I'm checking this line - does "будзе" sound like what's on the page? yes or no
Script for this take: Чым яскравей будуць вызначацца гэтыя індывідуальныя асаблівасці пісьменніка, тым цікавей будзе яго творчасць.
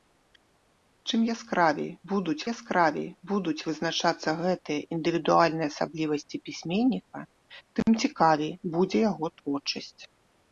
yes